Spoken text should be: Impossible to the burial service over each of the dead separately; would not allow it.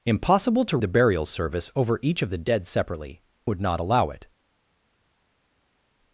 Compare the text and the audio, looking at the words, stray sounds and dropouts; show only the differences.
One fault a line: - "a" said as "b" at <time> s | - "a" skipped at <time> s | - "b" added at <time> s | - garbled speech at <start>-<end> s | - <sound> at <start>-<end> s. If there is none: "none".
none